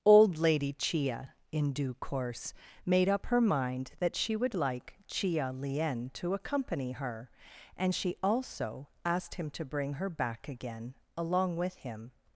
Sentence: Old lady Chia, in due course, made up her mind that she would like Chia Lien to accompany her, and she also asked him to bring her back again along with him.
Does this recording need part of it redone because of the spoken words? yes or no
no